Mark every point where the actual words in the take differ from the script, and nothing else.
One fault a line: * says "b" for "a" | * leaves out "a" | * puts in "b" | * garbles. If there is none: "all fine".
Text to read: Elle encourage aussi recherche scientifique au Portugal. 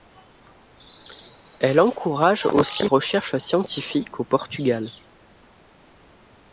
all fine